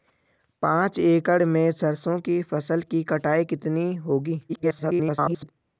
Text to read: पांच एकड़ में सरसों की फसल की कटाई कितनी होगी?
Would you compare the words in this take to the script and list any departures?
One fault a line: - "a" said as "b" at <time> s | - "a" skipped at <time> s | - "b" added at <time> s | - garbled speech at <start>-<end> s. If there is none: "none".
- garbled speech at 4.5-5.5 s